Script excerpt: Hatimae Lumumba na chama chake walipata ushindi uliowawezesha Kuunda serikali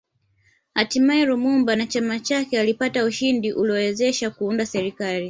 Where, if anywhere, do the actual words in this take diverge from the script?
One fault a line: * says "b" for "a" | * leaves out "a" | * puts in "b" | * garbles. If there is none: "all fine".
all fine